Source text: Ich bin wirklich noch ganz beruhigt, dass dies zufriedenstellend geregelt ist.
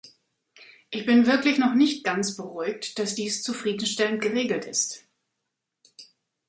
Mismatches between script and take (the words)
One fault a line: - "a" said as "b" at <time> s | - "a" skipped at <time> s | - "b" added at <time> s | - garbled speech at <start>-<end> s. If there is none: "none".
- "nicht" added at 1.7 s